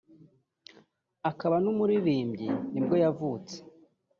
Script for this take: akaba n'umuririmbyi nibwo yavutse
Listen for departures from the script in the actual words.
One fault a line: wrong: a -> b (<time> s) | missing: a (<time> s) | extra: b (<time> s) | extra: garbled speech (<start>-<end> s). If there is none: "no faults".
no faults